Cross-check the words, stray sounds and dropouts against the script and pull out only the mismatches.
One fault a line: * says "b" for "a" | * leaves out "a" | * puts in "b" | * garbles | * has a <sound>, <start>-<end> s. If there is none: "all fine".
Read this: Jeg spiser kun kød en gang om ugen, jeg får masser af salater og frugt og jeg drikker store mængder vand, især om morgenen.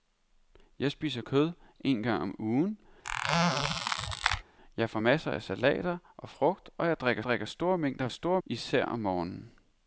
* leaves out "kun"
* has a squeak, 3.0-4.4 s
* puts in "drikker"
* says "store" for "vand"